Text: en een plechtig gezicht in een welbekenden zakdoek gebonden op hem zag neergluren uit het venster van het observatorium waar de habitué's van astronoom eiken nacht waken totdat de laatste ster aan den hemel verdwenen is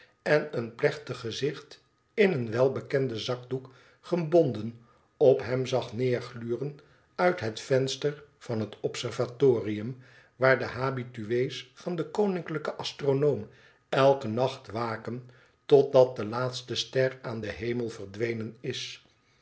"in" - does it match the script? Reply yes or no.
yes